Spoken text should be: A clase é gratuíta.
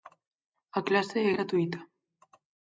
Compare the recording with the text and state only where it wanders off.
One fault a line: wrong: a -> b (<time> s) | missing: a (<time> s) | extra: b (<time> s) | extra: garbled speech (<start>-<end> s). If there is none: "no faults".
no faults